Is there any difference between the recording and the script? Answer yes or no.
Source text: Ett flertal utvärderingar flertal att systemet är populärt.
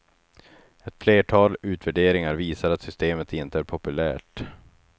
yes